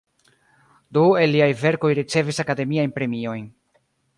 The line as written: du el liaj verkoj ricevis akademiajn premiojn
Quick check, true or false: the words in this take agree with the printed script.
true